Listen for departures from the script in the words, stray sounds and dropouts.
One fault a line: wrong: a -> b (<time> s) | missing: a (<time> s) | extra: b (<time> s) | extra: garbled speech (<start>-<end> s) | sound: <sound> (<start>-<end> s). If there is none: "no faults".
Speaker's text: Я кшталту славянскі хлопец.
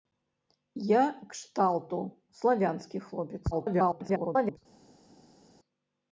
extra: garbled speech (3.5-4.6 s)